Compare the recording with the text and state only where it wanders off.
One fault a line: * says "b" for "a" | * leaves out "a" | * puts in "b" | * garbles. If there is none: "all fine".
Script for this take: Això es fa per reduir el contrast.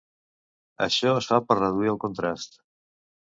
all fine